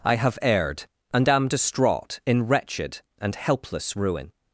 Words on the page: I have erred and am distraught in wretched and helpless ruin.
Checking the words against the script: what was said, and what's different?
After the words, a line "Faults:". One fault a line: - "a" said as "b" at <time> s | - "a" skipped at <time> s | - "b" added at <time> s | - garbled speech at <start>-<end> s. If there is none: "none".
I have erred and am distraught in wretched and helpless ruin.
Faults:
none